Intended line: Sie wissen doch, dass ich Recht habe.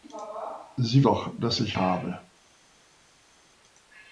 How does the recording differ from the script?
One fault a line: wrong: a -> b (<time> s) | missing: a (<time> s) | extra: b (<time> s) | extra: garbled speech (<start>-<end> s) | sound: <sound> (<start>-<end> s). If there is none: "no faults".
missing: wissen (1.1 s)
missing: Recht (1.8 s)